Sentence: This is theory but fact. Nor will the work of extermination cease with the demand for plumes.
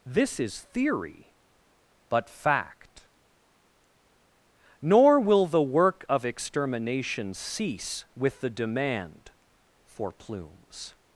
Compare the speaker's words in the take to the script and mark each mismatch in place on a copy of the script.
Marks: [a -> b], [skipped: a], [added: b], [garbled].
This is theory but fact. Nor will the work of extermination cease with the demand for plumes.